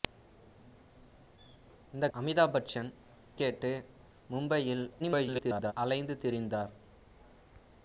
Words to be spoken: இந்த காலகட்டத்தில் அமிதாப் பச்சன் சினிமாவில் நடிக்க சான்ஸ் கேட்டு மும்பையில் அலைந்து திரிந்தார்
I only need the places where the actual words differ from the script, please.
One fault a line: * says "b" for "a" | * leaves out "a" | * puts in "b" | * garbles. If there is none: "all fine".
* leaves out "காலகட்டத்தில்"
* leaves out "சினிமாவில் நடிக்க சான்ஸ்"
* garbles